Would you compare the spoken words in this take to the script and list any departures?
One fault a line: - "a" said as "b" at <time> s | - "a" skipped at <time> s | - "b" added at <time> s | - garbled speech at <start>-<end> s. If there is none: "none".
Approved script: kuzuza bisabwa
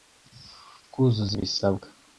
none